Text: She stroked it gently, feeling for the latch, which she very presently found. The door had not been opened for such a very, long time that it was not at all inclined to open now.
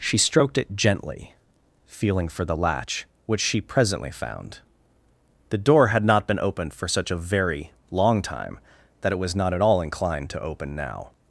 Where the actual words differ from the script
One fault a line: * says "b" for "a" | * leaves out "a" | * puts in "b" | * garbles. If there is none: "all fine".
* leaves out "very"